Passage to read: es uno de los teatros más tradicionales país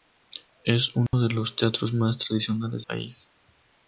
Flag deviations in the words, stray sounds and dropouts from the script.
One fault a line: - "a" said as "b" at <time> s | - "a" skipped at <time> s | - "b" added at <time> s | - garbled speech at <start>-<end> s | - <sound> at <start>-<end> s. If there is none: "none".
- dropout at 1.1-1.1 s